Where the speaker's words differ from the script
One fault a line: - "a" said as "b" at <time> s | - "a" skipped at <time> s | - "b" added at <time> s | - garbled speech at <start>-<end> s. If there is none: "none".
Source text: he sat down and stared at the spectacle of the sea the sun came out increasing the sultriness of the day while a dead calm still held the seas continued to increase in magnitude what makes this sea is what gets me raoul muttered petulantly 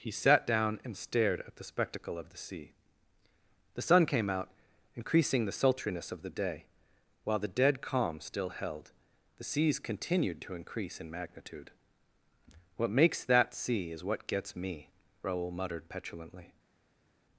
- "a" said as "the" at 7.4 s
- "this" said as "that" at 13.3 s